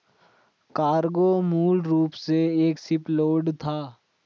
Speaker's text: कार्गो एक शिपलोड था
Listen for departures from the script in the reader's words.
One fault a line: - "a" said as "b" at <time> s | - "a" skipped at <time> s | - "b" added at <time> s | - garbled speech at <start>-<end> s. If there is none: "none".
- "मूल रूप से" added at 1.4 s